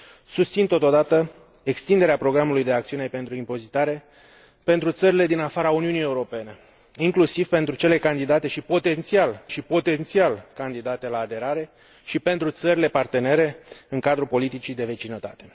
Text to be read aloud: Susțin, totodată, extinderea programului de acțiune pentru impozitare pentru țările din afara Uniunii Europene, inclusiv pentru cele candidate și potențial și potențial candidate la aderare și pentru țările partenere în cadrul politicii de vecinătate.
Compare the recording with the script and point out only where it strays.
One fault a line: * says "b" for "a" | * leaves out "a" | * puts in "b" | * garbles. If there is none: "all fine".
all fine